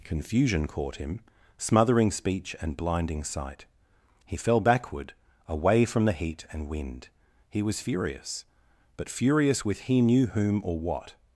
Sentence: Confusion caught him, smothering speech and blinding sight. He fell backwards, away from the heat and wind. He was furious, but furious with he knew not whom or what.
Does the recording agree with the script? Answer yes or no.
no